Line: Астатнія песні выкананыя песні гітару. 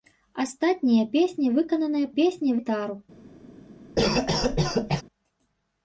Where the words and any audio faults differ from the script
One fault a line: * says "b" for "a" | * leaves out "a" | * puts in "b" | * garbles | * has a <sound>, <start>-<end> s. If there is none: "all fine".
* has a cough, 3.9-5.0 s